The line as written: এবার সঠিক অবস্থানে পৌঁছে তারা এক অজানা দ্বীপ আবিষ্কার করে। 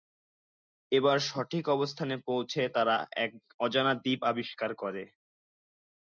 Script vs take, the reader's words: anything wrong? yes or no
no